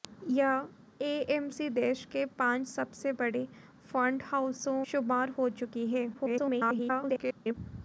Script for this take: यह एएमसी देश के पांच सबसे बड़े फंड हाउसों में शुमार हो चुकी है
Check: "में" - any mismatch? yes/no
yes